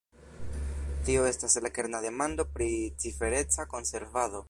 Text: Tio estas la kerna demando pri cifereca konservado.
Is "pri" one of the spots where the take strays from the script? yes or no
no